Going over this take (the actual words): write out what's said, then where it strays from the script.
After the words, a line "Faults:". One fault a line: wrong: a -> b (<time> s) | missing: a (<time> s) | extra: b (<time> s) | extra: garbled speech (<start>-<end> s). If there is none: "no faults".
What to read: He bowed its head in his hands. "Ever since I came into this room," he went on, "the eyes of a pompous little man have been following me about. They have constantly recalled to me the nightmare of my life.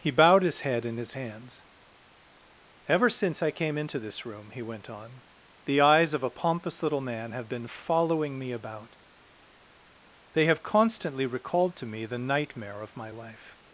He bowed his head in his hands. "Ever since I came into this room," he went on, "the eyes of a pompous little man have been following me about. They have constantly recalled to me the nightmare of my life.
Faults:
wrong: its -> his (0.4 s)